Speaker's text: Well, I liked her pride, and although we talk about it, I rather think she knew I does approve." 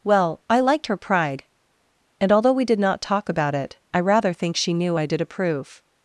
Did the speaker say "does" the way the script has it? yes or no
no